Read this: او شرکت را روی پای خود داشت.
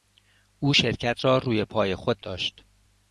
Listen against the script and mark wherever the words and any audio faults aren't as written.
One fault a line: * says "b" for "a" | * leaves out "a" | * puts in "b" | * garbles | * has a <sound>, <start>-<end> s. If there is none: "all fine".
all fine